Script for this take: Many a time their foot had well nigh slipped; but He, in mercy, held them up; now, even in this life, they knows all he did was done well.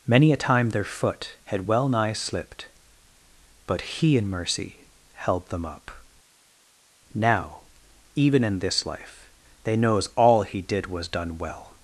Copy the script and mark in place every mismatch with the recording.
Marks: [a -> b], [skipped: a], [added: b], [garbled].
Many a time their foot had well nigh slipped; but He, in mercy, held them up; now, even in this life, they knows all he did was done well.